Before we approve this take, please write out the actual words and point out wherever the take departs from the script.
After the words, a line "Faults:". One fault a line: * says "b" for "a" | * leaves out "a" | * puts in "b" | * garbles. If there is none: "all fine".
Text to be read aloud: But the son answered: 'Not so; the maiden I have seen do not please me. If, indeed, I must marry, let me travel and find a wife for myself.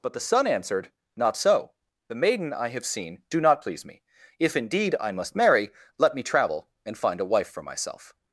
But the son answered: 'Not so; the maiden I have seen do not please me. If, indeed, I must marry, let me travel and find a wife for myself.
Faults:
all fine